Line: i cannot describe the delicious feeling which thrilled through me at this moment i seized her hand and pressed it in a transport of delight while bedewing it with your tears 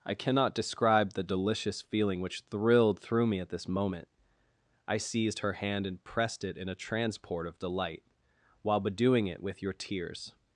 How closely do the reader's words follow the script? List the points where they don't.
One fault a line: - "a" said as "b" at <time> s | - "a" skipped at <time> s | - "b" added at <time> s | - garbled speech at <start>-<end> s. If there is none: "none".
none